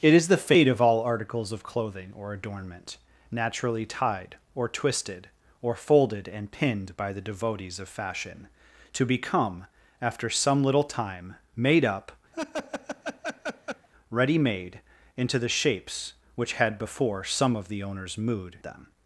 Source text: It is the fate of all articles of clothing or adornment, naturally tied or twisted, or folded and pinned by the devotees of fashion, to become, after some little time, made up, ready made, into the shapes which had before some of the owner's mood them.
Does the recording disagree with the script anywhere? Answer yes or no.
no